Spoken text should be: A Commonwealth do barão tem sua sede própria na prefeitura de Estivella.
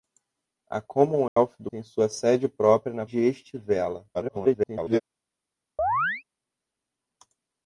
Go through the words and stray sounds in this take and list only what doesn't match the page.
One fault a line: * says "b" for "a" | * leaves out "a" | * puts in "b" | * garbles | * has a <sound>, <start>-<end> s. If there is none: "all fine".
* has a dropout, 1.3-1.4 s
* leaves out "barão"
* leaves out "prefeitura"
* garbles
* has a chirp, 5.8-6.2 s